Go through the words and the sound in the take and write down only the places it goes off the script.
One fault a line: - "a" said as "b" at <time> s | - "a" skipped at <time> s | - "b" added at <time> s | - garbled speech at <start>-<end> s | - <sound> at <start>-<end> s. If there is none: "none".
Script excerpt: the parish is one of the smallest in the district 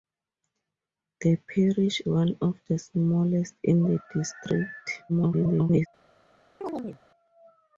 - "is" skipped at 2.0 s
- garbled speech at 5.1-5.9 s
- chirp at 6.6-7.0 s